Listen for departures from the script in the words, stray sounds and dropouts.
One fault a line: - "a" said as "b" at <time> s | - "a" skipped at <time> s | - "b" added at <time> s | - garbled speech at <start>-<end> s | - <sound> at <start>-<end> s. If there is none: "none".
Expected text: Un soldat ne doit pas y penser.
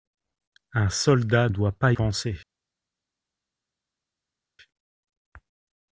- "ne" skipped at 1.5 s
- "y" skipped at 1.9 s